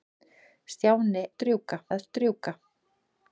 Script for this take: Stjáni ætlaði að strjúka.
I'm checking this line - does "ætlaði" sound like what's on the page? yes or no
no